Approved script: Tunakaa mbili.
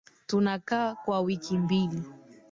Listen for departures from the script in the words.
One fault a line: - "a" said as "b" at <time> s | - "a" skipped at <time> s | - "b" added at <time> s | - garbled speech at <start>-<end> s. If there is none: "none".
- "kwa wiki" added at 0.9 s